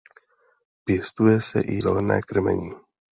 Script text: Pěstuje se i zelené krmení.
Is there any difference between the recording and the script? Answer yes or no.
no